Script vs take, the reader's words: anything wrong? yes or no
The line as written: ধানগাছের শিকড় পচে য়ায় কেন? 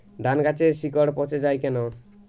no